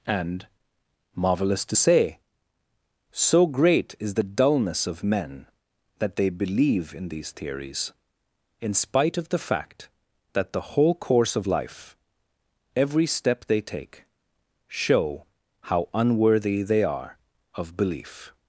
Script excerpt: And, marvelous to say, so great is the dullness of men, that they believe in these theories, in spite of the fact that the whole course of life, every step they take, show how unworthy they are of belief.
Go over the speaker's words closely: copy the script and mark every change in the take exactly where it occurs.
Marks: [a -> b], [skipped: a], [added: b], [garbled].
And, marvelous to say, so great is the dullness of men, that they believe in these theories, in spite of the fact that the whole course of life, every step they take, show how unworthy they are of belief.